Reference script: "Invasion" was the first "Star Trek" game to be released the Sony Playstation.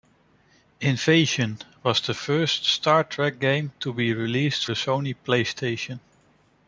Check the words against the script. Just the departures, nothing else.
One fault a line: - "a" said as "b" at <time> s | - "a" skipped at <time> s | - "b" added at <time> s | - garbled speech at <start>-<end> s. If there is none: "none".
none